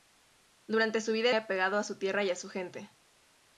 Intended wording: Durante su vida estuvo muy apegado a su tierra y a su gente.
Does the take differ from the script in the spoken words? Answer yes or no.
yes